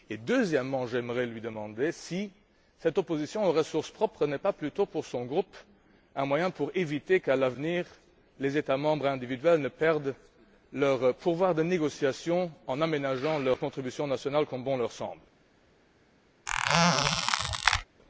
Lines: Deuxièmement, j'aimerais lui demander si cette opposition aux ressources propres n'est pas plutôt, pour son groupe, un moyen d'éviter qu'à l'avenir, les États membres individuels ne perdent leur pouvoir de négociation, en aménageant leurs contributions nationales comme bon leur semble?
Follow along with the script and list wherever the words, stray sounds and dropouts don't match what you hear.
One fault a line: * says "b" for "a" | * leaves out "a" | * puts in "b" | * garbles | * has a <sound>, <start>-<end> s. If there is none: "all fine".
* has a squeak, 16.5-17.8 s